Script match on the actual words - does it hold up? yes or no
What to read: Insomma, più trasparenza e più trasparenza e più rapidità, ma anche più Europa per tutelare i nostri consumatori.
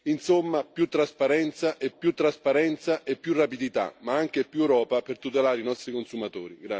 yes